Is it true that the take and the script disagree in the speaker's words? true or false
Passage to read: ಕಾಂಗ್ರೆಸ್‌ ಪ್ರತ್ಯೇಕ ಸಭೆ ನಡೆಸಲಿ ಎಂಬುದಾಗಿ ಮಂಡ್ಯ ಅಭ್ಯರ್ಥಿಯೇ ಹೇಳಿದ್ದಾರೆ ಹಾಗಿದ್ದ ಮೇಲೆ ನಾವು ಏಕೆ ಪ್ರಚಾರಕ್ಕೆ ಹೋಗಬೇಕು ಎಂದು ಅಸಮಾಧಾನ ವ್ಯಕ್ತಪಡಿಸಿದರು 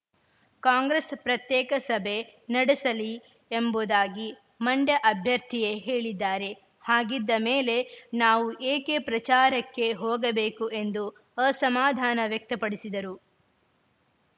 false